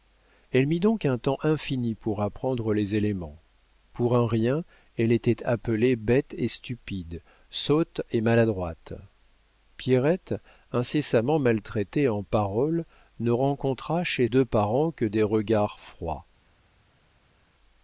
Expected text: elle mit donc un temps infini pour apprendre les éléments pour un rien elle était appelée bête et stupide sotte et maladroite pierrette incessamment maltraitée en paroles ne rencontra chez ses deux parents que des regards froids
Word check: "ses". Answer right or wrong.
wrong